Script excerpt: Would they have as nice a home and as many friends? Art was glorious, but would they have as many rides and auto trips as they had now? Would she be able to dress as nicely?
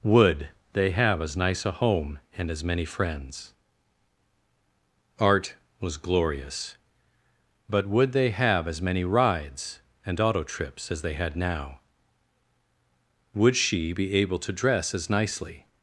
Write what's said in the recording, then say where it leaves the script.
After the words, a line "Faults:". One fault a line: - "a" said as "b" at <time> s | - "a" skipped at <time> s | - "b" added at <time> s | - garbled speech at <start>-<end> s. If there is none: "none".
Would they have as nice a home and as many friends? Art was glorious, but would they have as many rides and auto trips as they had now? Would she be able to dress as nicely?
Faults:
none